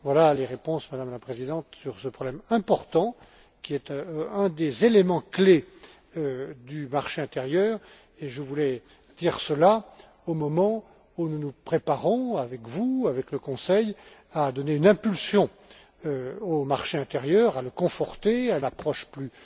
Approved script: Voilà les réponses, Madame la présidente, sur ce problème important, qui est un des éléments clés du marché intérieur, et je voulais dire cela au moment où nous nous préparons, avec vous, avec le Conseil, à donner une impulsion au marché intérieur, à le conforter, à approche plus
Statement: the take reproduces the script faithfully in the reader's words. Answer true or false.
true